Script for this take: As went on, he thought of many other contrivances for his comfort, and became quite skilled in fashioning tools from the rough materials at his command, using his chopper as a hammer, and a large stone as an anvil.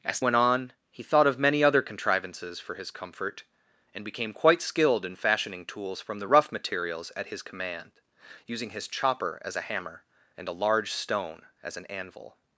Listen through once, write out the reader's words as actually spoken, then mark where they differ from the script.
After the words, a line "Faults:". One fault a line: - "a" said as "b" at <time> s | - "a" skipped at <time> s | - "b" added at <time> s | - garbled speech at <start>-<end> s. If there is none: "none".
As went on, he thought of many other contrivances for his comfort, and became quite skilled in fashioning tools from the rough materials at his command, using his chopper as a hammer, and a large stone as an anvil.
Faults:
none